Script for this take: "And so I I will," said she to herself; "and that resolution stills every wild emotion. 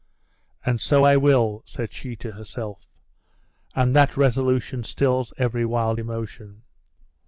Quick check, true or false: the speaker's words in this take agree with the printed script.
false